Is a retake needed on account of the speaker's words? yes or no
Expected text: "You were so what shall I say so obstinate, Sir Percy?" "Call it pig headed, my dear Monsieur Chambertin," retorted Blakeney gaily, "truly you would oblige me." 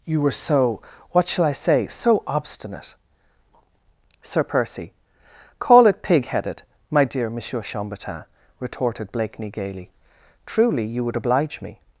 no